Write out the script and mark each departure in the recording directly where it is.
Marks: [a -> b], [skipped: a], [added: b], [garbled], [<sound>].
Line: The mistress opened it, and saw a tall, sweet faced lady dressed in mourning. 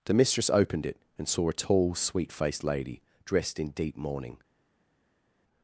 The mistress opened it, and saw a tall, sweet faced lady dressed in [added: deep] mourning.